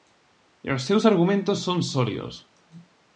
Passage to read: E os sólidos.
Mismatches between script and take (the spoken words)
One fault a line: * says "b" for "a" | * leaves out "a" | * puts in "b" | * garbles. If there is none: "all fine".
* puts in "seus argumentos son"